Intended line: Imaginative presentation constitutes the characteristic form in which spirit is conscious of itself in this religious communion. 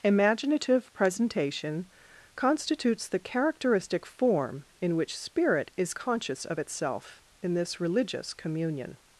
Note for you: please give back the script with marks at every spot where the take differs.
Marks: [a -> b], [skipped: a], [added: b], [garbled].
Imaginative presentation constitutes the characteristic form in which spirit is conscious of itself in this religious communion.